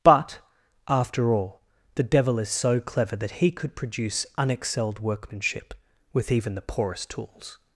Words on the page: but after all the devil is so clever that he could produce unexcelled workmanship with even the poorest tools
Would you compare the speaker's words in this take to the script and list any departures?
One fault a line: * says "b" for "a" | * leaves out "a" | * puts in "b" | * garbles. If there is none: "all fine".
all fine